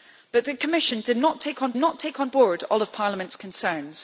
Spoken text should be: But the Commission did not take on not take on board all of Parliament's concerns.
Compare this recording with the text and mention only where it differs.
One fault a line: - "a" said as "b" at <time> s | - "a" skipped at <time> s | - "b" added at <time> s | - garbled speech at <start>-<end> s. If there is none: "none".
none